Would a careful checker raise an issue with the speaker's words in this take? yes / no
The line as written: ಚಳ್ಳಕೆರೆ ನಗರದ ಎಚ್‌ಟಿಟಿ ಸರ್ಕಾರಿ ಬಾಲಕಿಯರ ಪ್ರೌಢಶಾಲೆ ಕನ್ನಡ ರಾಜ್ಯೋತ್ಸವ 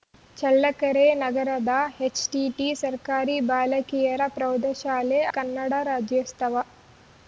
no